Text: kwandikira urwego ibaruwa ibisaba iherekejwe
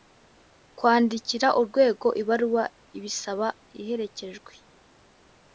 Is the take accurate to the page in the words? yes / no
yes